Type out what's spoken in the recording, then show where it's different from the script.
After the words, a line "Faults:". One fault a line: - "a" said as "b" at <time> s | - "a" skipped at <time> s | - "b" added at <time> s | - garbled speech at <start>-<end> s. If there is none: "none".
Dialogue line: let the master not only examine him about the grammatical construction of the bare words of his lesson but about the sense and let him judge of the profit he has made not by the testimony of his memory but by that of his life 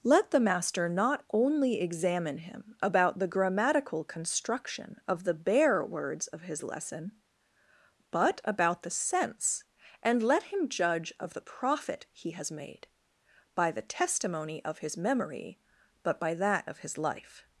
let the master not only examine him about the grammatical construction of the bare words of his lesson but about the sense and let him judge of the profit he has made by the testimony of his memory but by that of his life
Faults:
- "not" skipped at 12.9 s